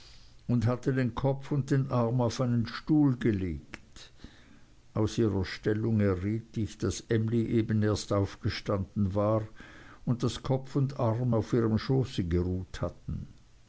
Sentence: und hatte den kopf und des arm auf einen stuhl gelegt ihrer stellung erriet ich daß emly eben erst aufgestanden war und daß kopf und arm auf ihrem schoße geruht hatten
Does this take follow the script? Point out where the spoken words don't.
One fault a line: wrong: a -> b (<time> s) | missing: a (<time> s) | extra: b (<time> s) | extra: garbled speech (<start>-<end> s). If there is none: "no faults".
wrong: des -> den (1.7 s)
extra: aus (5.0 s)